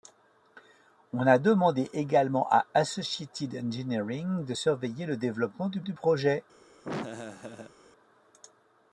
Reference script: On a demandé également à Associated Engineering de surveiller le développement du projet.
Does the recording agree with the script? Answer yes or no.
no